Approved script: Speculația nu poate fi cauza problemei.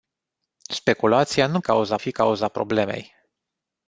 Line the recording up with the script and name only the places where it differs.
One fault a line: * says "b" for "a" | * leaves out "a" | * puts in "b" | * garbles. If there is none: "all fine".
* says "cauza" for "poate"